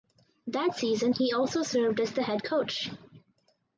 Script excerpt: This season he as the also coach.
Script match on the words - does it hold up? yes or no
no